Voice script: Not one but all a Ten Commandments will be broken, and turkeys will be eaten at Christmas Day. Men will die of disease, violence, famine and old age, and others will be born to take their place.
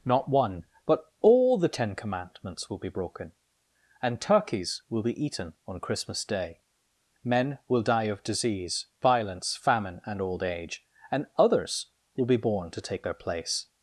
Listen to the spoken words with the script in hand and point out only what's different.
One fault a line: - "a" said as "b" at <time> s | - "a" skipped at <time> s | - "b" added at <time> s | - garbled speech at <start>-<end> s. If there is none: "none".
- "a" said as "the" at 1.6 s
- "at" said as "on" at 5.7 s